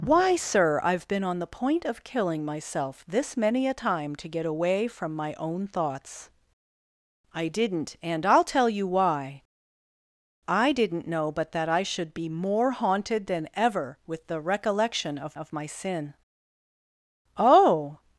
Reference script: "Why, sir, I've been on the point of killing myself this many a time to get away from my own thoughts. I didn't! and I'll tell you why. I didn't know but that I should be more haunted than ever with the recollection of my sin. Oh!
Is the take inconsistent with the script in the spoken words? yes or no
yes